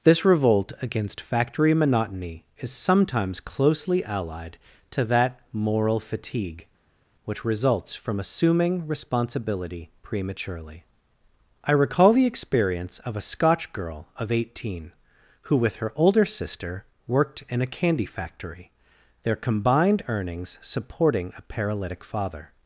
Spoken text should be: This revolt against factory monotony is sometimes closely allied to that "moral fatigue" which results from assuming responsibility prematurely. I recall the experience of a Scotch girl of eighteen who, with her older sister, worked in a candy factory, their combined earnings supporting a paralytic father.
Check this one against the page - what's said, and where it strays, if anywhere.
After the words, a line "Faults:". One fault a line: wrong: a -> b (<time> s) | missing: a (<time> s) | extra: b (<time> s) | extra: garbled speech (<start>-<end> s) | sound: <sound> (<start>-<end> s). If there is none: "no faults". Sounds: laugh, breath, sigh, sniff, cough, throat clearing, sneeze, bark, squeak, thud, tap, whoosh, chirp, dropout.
This revolt against factory monotony is sometimes closely allied to that "moral fatigue" which results from assuming responsibility prematurely. I recall the experience of a Scotch girl of eighteen who, with her older sister, worked in a candy factory, their combined earnings supporting a paralytic father.
Faults:
no faults